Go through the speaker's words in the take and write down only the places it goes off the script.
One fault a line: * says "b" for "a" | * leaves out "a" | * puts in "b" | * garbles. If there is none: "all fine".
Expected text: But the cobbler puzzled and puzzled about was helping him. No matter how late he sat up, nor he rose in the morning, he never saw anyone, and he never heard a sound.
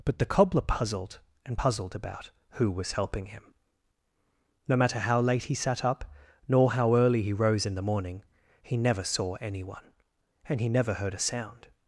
* puts in "who"
* puts in "how early"